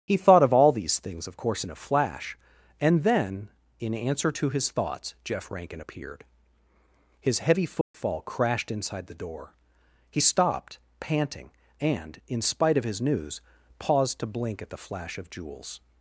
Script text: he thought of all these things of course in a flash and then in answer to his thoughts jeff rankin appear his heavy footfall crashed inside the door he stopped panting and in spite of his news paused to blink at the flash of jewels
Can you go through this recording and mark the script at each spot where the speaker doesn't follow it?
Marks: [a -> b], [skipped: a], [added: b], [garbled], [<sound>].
he thought of all these things of course in a flash and then in answer to his thoughts jeff rankin [appear -> appeared] his heavy footfall [dropout] crashed inside the door he stopped panting and in spite of his news paused to blink at the flash of jewels